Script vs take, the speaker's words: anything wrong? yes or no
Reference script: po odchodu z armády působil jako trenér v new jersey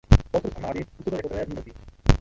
no